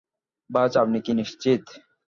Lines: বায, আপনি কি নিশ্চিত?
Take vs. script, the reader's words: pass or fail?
pass